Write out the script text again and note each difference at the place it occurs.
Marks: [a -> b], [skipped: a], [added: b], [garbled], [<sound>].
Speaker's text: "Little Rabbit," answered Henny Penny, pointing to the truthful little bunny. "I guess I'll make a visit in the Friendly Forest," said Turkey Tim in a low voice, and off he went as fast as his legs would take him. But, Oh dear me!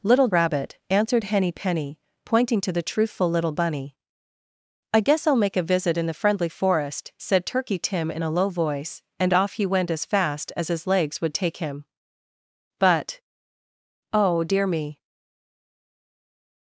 "Little Rabbit," answered Henny Penny, pointing to the truthful little bunny. "I guess I'll make a visit in the Friendly Forest," said Turkey Tim in a low voice, and off he went as fast as his legs would take him. But, Oh dear me!